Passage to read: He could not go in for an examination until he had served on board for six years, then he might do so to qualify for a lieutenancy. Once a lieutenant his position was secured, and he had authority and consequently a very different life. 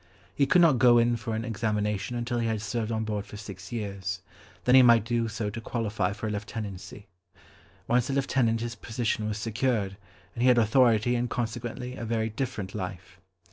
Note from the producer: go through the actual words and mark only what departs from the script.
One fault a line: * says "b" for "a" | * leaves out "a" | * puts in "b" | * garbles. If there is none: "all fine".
all fine